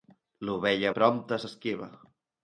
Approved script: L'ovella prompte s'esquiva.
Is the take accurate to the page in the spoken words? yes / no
yes